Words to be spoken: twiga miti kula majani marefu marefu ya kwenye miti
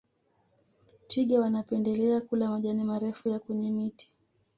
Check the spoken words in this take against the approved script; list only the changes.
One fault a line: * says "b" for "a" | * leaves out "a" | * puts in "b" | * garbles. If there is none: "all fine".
* says "wanapendelea" for "miti"
* leaves out "marefu"